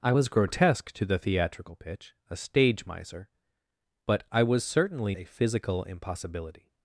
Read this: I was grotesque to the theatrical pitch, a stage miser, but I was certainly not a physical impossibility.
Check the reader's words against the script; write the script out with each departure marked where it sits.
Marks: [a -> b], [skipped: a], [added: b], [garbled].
I was grotesque to the theatrical pitch, a stage miser, but I was certainly [skipped: not] a physical impossibility.